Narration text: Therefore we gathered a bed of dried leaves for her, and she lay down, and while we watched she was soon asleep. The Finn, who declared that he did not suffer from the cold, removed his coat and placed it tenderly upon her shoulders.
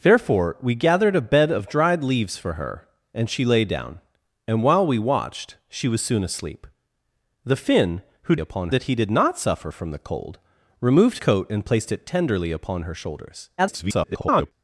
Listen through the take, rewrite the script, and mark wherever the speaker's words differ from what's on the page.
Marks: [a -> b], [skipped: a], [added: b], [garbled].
Therefore we gathered a bed of dried leaves for her, and she lay down, and while we watched she was soon asleep. The Finn, who [declared -> upon] that he did not suffer from the cold, removed [skipped: his] coat and placed it tenderly upon her shoulders. [garbled]